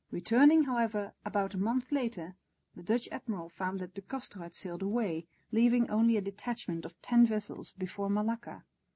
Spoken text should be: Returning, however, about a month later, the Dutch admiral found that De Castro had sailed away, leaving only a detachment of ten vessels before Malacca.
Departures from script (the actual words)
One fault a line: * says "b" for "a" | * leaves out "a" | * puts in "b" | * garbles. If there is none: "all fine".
all fine